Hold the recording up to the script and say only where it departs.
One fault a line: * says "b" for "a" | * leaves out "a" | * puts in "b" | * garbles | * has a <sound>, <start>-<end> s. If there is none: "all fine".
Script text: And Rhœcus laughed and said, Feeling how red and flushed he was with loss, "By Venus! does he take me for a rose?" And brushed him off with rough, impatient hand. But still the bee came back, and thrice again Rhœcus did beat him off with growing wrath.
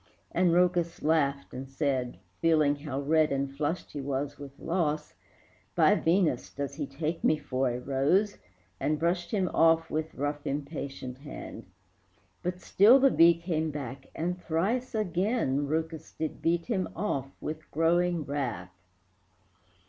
all fine